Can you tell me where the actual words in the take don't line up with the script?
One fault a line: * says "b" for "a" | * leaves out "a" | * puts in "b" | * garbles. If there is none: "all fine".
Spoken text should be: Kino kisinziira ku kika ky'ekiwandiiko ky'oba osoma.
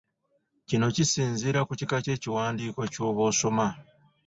all fine